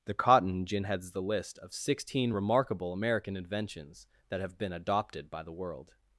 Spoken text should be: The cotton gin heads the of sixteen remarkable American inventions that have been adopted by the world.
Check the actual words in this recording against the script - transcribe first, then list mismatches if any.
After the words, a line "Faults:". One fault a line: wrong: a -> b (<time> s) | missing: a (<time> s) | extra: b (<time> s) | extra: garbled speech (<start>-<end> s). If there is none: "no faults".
The cotton gin heads the list of sixteen remarkable American inventions that have been adopted by the world.
Faults:
extra: list (1.2 s)